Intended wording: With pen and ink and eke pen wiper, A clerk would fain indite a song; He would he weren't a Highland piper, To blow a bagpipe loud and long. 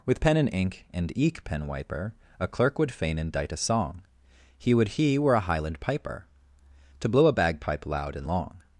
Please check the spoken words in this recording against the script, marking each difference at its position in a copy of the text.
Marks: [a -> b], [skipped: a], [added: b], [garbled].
With pen and ink and eke pen wiper, A clerk would fain indite a song; He would he [weren't -> were] a Highland piper, To blow a bagpipe loud and long.